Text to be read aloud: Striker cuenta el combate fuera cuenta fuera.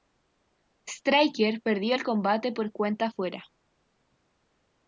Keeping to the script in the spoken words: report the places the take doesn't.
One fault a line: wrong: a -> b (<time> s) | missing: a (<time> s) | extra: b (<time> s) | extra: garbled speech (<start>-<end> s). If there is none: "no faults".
wrong: cuenta -> perdió (1.6 s)
wrong: fuera -> por (2.5 s)